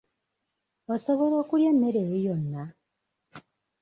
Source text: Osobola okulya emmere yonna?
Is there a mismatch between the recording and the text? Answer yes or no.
yes